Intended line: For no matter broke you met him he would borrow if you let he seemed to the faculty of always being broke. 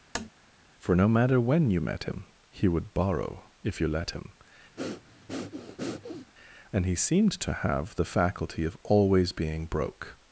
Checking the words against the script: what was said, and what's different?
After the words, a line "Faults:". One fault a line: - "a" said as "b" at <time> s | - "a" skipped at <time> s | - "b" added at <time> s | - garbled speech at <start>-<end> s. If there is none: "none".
For no matter when you met him he would borrow if you let him, and he seemed to have the faculty of always being broke.
Faults:
- "broke" said as "when" at 1.4 s
- "him and" added at 4.1 s
- "have" added at 7.5 s